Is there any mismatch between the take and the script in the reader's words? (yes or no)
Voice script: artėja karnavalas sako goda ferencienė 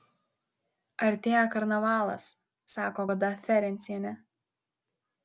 no